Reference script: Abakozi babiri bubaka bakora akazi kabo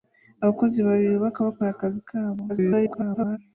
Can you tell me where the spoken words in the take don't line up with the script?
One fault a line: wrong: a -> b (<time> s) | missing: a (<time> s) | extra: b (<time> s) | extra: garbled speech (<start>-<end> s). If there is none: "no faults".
extra: garbled speech (2.5-3.4 s)